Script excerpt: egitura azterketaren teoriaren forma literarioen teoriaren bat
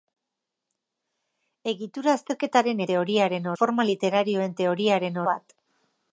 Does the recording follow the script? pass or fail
pass